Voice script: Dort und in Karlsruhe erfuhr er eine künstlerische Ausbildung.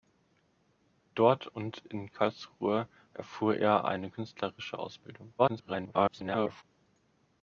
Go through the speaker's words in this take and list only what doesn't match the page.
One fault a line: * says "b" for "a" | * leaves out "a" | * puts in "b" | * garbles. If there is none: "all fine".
* garbles